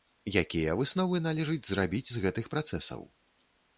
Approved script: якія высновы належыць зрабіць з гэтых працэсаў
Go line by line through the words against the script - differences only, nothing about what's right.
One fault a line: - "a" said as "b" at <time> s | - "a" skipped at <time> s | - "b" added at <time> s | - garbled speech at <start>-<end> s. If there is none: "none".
none